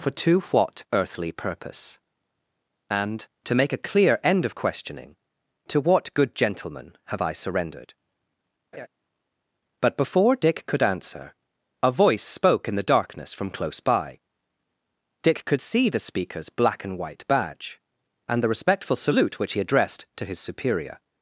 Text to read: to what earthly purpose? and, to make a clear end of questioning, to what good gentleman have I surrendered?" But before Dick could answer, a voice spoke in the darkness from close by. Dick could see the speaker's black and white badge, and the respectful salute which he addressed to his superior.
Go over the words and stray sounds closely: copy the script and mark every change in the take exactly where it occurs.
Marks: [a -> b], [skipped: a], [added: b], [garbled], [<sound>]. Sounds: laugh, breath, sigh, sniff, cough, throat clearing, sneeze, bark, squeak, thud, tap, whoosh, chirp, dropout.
[added: for] to what earthly purpose? and, to make a clear end of questioning, to what good gentleman have I surrendered?" [laugh] But before Dick could answer, a voice spoke in the darkness from close by. Dick could see the speaker's black and white badge, and the respectful salute which he addressed to his superior.